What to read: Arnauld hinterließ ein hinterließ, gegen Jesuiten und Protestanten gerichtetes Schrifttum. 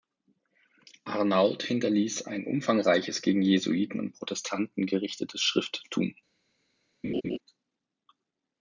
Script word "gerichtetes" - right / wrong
right